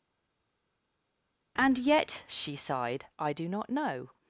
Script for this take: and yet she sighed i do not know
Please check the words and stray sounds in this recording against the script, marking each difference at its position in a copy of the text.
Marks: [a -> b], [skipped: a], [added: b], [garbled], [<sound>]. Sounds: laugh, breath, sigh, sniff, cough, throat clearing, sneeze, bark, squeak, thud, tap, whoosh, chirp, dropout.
and yet she sighed i do not know